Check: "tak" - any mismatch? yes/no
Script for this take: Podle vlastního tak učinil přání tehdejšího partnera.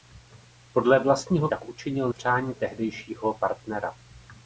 no